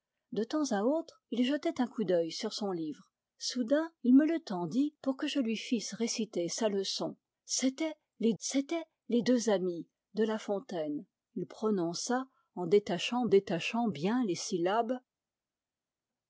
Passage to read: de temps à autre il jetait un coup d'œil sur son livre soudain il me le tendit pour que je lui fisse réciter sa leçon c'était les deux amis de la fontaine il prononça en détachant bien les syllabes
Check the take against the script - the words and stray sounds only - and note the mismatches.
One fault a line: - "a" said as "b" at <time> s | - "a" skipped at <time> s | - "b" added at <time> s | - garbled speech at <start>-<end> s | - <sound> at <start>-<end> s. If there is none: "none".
- "c'était les" added at 8.4 s
- "détachant" added at 13.3 s